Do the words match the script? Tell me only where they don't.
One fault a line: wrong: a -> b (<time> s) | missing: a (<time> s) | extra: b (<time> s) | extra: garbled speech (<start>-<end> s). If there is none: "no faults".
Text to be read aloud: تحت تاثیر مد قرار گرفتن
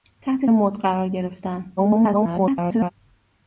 missing: تاثیر (0.5 s)
extra: garbled speech (1.8-2.9 s)